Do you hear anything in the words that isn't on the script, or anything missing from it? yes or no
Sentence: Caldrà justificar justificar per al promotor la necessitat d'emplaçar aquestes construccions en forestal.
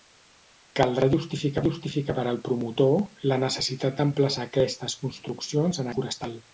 no